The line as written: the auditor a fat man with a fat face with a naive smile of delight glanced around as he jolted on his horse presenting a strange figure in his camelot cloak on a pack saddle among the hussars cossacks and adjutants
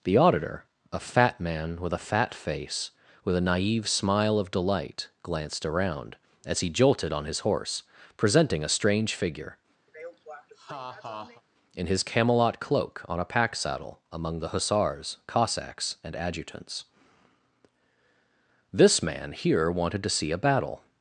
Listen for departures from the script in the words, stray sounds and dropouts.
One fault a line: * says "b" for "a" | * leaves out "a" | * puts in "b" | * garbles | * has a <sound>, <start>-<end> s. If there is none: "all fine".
* has a laugh, 9.9-11.4 s
* puts in "this man here wanted to see a battle"